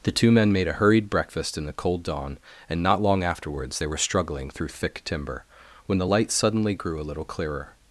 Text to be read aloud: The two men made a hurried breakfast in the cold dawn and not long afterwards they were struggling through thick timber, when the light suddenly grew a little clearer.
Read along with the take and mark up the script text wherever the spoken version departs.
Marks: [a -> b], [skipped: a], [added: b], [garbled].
The two men made a hurried breakfast in the cold dawn and not long afterwards they were struggling through thick timber, when the light suddenly grew a little clearer.